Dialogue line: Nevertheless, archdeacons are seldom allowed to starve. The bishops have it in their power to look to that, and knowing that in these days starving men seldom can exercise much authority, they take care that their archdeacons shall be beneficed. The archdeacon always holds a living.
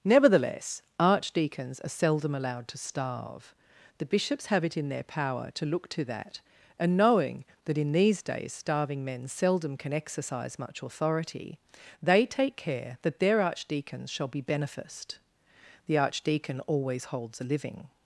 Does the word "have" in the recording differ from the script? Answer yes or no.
no